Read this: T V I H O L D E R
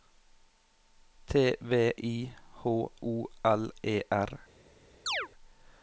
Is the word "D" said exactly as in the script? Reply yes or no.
no